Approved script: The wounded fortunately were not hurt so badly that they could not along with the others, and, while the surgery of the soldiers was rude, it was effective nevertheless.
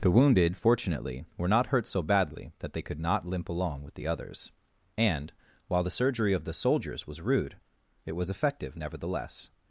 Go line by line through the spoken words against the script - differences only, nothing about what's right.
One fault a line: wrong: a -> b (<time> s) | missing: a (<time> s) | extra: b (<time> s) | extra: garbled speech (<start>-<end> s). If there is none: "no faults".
extra: limp (3.2 s)